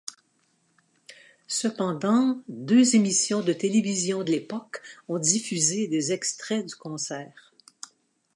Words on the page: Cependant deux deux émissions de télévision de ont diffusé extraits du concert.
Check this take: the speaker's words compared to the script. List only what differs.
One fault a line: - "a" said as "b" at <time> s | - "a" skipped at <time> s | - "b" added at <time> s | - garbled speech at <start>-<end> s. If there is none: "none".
- "deux" skipped at 3.0 s
- "l'époque" added at 4.3 s
- "des" added at 5.9 s